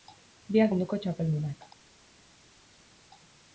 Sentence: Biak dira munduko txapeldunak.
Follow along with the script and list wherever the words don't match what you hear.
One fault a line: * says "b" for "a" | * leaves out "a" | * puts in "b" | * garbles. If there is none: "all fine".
* leaves out "dira"